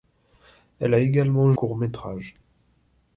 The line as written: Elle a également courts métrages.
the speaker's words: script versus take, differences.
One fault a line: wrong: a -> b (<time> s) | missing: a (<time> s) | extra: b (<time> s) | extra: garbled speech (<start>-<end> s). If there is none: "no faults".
no faults